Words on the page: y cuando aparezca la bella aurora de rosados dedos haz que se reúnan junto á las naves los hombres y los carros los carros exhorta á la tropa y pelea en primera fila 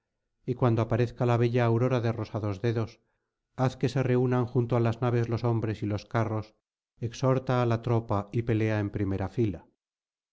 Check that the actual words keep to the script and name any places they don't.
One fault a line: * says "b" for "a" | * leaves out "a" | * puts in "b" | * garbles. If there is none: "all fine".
* leaves out "los carros"